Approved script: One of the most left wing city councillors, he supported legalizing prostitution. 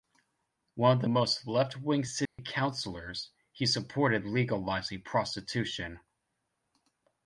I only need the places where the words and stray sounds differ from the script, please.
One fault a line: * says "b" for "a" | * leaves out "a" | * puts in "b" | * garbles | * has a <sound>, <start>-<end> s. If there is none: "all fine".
* has a dropout, 2.3-2.4 s